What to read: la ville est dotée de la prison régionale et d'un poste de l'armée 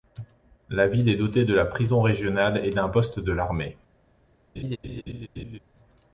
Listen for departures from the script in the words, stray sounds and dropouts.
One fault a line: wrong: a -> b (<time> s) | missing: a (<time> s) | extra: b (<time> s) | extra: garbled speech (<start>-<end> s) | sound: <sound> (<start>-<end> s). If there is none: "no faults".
sound: laugh (4.6-5.6 s)